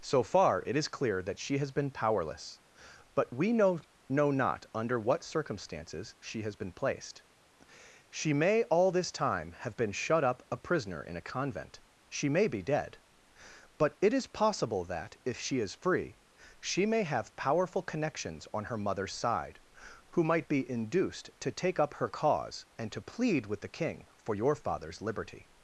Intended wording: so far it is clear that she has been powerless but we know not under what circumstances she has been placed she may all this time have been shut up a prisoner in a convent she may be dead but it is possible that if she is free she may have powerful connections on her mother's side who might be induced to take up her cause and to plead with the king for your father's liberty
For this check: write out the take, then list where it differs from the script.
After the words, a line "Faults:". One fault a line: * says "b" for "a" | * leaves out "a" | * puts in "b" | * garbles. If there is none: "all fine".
so far it is clear that she has been powerless but we know know not under what circumstances she has been placed she may all this time have been shut up a prisoner in a convent she may be dead but it is possible that if she is free she may have powerful connections on her mother's side who might be induced to take up her cause and to plead with the king for your father's liberty
Faults:
* puts in "know"